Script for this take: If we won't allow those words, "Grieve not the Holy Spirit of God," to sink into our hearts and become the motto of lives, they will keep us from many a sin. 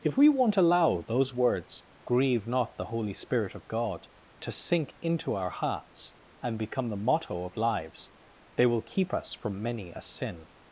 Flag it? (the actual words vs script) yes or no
no